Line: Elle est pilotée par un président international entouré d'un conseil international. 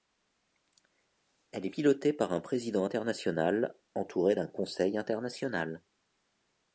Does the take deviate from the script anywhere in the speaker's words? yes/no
no